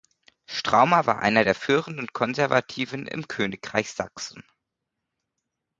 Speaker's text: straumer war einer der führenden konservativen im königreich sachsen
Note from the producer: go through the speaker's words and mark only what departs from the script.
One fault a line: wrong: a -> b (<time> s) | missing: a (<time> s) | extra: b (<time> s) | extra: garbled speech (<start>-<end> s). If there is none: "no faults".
no faults